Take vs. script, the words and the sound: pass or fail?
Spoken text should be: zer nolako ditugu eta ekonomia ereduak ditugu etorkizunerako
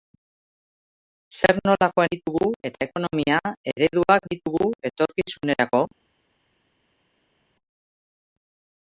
pass